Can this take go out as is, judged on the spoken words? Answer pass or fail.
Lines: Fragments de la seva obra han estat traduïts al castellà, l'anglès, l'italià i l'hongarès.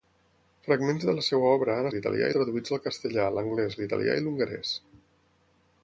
fail